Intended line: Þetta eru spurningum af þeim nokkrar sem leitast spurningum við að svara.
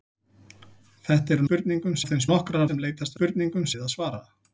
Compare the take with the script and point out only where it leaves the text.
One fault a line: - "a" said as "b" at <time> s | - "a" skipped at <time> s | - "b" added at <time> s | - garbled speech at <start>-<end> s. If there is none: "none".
none